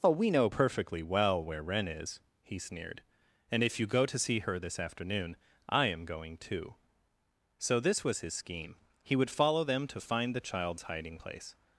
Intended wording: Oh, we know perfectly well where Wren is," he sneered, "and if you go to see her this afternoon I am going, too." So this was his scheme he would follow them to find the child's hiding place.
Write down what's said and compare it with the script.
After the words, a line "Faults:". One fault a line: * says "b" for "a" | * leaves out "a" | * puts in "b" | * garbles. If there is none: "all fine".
Oh, we know perfectly well where Wren is," he sneered, "and if you go to see her this afternoon I am going, too." So this was his scheme he would follow them to find the child's hiding place.
Faults:
all fine